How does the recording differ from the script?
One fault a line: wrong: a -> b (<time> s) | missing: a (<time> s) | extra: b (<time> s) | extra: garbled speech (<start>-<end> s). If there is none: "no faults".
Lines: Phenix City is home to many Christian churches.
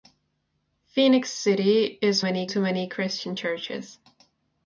wrong: home -> many (2.2 s)